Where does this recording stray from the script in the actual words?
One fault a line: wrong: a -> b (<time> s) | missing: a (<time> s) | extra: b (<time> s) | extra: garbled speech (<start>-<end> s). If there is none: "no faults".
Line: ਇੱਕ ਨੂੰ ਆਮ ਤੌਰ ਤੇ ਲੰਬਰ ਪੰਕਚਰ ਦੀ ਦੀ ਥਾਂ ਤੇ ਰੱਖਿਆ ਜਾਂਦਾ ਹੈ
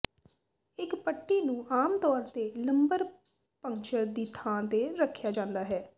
extra: ਪੱਟੀ (0.9 s)
missing: ਦੀ (4.3 s)